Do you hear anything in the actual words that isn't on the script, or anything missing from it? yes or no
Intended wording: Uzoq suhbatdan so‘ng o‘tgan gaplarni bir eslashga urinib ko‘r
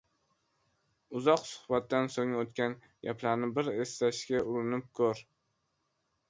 no